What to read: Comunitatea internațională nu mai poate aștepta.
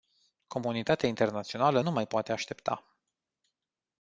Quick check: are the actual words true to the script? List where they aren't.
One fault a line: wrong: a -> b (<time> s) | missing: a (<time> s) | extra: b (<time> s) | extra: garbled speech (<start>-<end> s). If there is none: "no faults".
no faults